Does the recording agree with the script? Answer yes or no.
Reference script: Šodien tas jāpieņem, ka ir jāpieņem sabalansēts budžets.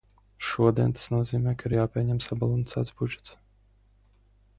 no